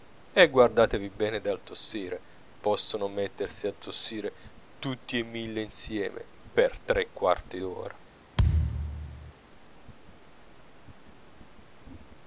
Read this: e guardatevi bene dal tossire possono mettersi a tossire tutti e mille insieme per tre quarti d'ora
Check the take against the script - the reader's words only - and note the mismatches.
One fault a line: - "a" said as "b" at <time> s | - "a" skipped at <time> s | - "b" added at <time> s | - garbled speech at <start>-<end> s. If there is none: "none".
none